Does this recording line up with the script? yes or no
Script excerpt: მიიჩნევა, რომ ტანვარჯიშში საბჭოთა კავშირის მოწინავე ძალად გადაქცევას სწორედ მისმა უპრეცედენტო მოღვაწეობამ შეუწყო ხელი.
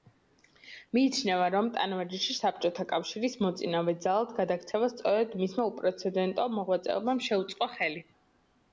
yes